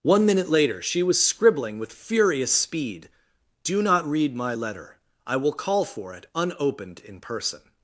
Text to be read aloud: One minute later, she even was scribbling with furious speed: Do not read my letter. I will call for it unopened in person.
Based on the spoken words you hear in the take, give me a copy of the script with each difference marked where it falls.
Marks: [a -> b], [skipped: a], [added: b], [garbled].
One minute later, she [skipped: even] was scribbling with furious speed: Do not read my letter. I will call for it unopened in person.